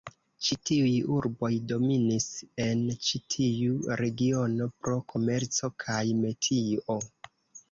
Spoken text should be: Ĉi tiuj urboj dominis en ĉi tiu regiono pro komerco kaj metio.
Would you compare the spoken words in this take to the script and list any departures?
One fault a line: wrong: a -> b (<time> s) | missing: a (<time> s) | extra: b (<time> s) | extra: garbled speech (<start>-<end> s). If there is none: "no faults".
no faults